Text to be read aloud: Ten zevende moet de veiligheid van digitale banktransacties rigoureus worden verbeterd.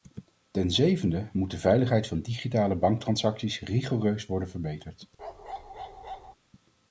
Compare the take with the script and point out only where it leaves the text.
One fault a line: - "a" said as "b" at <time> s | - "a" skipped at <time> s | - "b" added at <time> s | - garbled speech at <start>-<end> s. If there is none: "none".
none